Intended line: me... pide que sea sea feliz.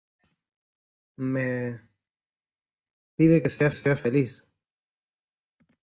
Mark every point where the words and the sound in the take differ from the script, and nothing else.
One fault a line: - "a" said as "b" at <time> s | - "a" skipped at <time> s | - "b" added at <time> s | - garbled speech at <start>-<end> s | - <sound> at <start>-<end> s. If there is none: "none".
none